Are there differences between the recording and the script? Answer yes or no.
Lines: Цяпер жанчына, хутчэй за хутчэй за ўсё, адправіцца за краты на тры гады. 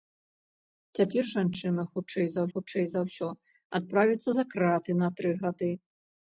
no